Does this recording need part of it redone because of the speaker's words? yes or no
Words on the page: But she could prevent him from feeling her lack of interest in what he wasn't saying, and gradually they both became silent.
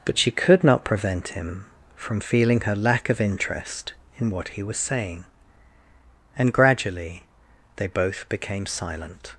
yes